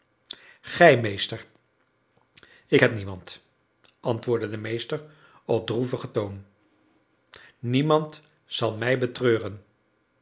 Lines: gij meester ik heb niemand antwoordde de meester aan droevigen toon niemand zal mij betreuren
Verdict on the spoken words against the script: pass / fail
fail